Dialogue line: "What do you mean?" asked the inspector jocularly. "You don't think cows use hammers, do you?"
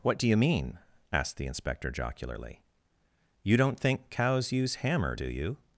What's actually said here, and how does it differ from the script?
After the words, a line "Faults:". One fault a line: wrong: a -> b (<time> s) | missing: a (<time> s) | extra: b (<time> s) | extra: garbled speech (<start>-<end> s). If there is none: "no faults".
"What do you mean?" asked the inspector jocularly. "You don't think cows use hammer, do you?"
Faults:
wrong: hammers -> hammer (4.8 s)